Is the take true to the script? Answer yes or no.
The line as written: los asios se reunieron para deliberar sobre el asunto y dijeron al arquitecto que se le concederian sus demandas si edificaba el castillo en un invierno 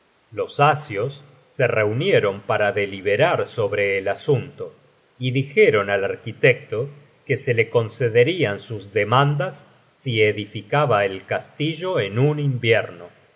yes